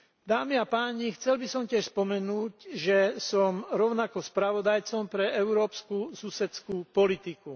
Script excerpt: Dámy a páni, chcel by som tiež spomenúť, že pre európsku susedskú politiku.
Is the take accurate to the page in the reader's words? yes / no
no